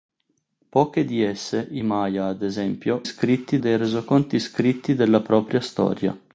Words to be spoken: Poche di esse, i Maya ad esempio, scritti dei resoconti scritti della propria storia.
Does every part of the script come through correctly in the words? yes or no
yes